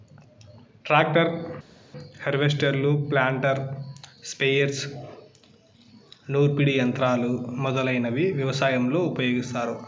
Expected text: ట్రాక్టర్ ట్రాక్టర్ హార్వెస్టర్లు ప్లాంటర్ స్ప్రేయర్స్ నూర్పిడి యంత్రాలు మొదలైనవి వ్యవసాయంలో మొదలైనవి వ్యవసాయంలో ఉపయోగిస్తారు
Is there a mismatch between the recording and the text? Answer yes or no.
yes